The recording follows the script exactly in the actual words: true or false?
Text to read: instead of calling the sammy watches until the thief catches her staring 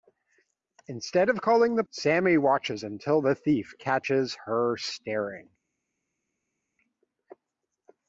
true